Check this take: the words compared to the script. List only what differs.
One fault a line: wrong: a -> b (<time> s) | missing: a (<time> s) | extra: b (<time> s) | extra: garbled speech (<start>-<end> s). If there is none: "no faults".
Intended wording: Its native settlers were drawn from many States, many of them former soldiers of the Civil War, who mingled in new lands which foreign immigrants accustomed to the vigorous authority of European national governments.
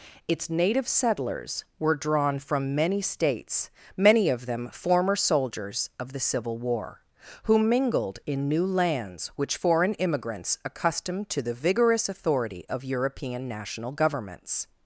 no faults